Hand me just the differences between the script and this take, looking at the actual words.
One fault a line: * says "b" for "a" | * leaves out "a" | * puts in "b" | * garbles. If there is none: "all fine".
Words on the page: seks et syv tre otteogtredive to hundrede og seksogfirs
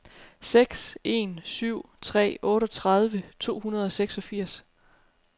* says "en" for "et"